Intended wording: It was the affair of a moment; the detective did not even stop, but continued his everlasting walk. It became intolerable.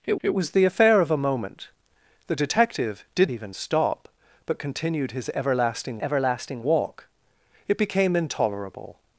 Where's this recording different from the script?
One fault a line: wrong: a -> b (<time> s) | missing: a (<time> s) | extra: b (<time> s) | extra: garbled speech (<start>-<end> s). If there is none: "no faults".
extra: it (0.2 s)
missing: not (3.3 s)
extra: everlasting (6.0 s)